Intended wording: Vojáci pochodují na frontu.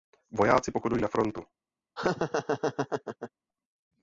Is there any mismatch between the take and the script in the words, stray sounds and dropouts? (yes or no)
yes